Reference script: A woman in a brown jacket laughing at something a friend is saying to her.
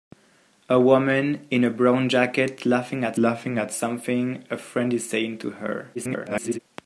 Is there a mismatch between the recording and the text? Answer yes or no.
yes